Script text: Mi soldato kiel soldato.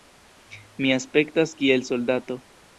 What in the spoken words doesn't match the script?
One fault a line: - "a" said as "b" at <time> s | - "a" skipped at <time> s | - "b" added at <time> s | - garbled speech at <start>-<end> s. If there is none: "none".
- "soldato" said as "aspektas" at 1.0 s